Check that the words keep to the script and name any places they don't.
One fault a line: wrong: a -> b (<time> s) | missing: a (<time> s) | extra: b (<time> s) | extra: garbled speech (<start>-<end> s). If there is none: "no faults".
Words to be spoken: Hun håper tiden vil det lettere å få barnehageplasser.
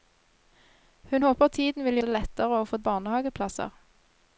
no faults